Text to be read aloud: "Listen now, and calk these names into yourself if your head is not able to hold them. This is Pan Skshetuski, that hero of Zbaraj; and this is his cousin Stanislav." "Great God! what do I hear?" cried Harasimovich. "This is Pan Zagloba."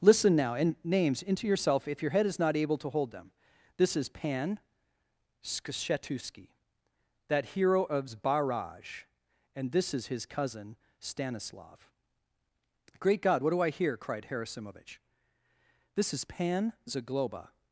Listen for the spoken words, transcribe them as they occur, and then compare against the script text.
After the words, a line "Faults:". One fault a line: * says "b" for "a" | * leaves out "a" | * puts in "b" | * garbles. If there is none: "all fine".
"Listen now, and names into yourself if your head is not able to hold them. This is Pan Skshetuski, that hero of Zbaraj; and this is his cousin Stanislav." "Great God! what do I hear?" cried Harasimovich. "This is Pan Zagloba."
Faults:
* leaves out "calk these"